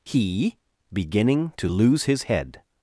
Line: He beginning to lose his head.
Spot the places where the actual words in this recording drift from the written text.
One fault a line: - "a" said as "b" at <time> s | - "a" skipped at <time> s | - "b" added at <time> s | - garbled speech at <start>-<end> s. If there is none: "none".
none